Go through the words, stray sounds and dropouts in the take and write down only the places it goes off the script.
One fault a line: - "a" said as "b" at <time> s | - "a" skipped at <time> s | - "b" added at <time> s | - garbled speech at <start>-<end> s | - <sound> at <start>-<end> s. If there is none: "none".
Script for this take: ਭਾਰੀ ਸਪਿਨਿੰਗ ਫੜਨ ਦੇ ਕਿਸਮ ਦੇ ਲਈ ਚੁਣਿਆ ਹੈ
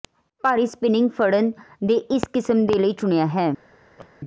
- "ਇਸ" added at 2.1 s
- laugh at 4.0-4.1 s